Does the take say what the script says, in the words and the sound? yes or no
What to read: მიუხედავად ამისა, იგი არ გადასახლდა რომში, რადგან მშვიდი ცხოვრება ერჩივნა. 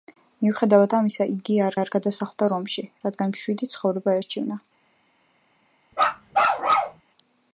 no